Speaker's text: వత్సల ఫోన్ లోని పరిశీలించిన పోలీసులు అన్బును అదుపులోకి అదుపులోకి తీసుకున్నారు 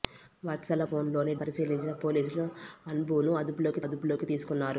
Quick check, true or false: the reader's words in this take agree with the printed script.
true